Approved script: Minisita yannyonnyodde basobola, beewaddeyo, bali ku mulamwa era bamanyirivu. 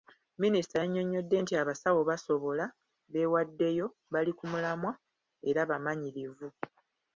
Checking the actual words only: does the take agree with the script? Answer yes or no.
no